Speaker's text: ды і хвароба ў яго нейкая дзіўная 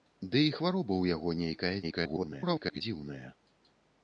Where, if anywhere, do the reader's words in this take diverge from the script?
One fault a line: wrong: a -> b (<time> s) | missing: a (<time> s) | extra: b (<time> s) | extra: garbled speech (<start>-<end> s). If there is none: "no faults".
extra: garbled speech (1.8-2.8 s)